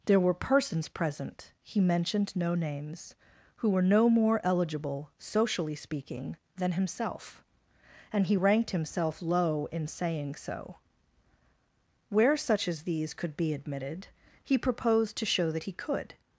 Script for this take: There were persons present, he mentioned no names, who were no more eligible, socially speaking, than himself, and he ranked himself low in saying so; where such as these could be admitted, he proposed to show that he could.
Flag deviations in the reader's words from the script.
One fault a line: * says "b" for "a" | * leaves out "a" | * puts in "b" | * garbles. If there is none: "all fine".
all fine